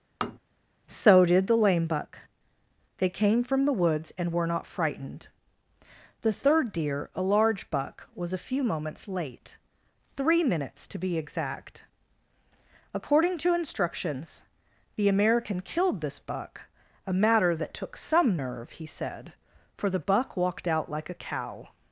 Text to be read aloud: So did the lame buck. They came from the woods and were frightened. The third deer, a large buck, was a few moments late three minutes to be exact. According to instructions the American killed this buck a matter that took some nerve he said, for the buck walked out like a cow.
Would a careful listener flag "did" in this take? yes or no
no